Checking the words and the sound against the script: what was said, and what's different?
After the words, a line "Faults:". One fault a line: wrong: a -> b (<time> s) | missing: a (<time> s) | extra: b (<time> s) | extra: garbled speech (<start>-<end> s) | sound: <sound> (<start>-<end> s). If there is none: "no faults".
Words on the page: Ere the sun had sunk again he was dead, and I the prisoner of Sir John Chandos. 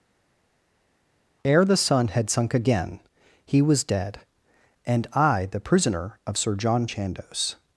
Ere the sun had sunk again he was dead, and I the prisoner of Sir John Chandos.
Faults:
no faults